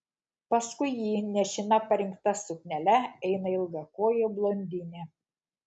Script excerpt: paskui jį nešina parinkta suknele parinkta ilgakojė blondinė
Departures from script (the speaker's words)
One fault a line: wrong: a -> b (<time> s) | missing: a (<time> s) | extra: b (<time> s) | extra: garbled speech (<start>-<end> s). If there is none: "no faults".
wrong: parinkta -> eina (3.3 s)